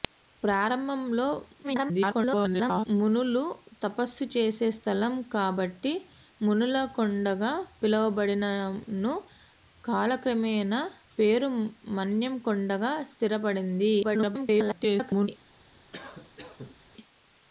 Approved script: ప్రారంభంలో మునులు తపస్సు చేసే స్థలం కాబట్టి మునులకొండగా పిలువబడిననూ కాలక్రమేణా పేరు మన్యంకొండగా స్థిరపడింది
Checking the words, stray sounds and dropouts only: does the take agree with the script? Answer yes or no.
no